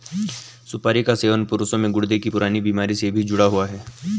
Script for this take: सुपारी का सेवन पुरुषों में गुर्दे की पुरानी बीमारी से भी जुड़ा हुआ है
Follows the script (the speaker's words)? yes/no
yes